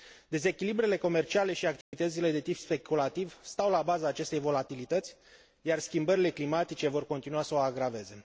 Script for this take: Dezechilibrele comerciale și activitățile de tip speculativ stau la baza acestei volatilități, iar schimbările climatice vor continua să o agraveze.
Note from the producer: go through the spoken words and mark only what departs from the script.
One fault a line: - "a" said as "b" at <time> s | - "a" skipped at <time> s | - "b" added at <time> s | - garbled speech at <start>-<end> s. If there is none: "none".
none